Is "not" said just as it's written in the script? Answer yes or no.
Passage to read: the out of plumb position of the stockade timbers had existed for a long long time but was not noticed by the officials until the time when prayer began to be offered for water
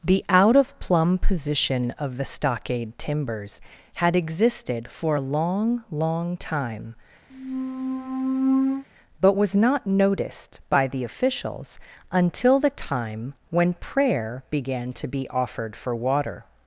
yes